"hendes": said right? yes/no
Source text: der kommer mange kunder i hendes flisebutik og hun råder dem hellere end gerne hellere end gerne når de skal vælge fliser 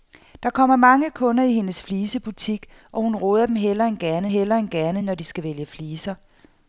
yes